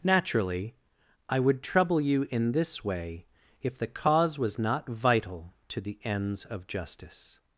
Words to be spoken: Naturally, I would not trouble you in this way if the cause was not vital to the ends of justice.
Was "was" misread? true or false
false